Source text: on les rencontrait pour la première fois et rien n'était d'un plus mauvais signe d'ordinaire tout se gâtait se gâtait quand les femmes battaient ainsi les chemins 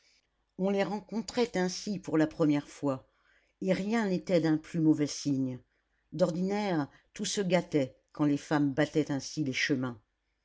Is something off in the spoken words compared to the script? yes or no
yes